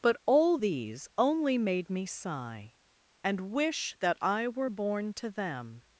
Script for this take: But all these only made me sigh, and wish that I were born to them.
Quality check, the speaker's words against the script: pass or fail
pass